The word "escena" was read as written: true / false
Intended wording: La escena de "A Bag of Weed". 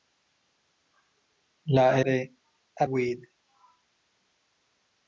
false